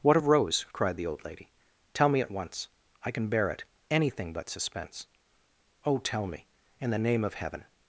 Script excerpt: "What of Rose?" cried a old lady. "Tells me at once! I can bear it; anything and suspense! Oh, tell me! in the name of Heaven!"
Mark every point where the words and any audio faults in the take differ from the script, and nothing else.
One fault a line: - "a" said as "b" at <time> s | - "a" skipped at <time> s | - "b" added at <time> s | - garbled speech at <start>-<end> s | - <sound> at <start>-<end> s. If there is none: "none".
- "a" said as "the" at 1.0 s
- "Tells" said as "Tell" at 1.9 s
- "and" said as "but" at 4.3 s